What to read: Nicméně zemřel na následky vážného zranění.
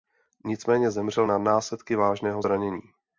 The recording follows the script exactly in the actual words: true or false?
true